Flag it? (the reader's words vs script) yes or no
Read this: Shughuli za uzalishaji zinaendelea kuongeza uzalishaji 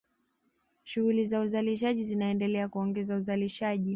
no